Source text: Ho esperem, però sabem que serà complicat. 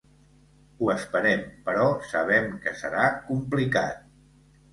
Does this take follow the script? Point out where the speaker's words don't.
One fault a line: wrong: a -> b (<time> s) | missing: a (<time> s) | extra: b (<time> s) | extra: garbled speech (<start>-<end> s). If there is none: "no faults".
no faults